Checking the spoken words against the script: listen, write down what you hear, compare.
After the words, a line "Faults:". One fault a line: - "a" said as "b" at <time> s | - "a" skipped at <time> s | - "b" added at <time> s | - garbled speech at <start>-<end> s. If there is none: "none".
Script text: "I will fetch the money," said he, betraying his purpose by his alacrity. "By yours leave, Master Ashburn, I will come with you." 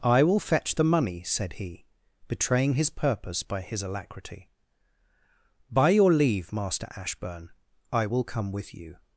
"I will fetch the money," said he, betraying his purpose by his alacrity. "By your leave, Master Ashburn, I will come with you."
Faults:
- "yours" said as "your" at 5.9 s